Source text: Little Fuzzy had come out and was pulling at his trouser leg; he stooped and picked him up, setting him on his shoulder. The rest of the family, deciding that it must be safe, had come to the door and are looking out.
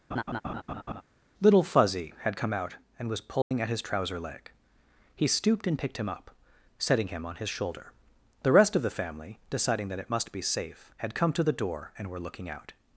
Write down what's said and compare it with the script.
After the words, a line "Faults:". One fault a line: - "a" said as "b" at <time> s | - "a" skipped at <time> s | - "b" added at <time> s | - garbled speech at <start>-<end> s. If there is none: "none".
Little Fuzzy had come out and was pulling at his trouser leg; he stooped and picked him up, setting him on his shoulder. The rest of the family, deciding that it must be safe, had come to the door and were looking out.
Faults:
- "are" said as "were" at 12.1 s